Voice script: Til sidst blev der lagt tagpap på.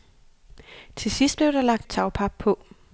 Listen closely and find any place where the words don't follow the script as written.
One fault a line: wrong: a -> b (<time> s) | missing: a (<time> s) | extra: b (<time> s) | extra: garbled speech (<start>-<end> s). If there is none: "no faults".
no faults